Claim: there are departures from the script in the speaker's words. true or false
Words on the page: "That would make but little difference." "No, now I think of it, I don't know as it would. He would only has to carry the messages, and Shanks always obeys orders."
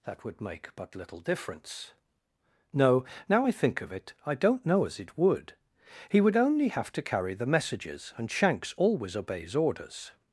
true